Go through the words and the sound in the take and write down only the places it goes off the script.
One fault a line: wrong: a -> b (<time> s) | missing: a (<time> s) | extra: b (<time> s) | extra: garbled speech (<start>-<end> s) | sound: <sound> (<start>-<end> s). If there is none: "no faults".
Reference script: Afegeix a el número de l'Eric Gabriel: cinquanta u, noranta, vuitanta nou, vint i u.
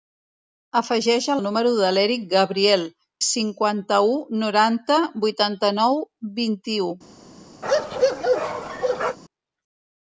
sound: bark (7.6-9.2 s)